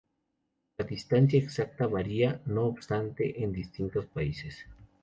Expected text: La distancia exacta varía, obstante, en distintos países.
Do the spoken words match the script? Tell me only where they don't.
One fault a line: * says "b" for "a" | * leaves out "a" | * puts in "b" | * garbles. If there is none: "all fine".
* puts in "no"